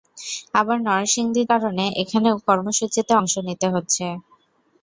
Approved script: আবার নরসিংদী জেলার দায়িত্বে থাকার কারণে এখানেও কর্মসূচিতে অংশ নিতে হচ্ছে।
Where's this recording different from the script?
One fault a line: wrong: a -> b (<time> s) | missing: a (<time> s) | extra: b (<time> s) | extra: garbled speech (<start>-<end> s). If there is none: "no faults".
missing: জেলার দায়িত্বে থাকার (1.4 s)